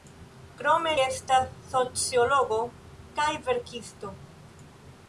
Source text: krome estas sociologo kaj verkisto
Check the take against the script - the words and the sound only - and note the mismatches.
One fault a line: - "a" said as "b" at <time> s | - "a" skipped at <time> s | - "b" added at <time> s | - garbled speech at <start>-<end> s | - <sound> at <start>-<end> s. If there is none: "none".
none